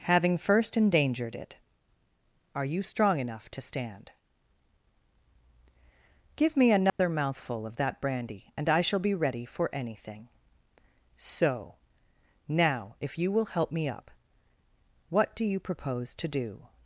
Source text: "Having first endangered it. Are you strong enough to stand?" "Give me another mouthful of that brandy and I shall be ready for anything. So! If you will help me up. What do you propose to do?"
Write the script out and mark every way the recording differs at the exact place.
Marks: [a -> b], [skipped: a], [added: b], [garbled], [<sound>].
"Having first endangered it. Are you strong enough to stand?" "Give me another [dropout] mouthful of that brandy and I shall be ready for anything. So! [added: Now] If you will help me up. What do you propose to do?"